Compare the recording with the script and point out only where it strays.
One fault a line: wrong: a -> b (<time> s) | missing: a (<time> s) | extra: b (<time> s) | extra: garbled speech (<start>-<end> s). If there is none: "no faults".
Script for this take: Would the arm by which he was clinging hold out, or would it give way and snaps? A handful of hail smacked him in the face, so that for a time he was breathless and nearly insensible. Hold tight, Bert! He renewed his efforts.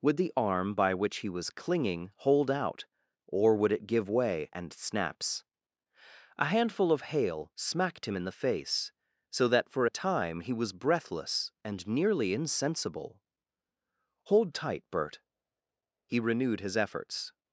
no faults